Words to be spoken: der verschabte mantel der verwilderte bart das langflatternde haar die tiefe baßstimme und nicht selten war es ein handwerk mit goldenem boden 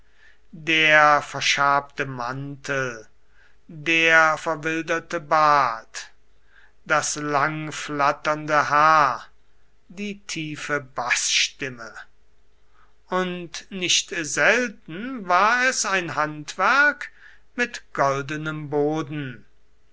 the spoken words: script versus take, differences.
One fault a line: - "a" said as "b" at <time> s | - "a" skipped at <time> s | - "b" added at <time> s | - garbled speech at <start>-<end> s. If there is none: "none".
none